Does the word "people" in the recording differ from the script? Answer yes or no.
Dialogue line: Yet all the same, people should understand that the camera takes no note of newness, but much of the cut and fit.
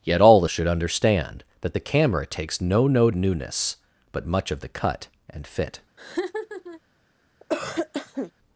yes